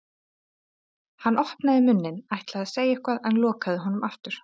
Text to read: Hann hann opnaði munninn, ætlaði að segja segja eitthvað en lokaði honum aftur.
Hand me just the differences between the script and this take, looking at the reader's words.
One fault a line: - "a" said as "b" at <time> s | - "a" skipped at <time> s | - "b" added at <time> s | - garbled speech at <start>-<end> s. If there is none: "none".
- "hann" skipped at 1.4 s
- "segja" skipped at 3.0 s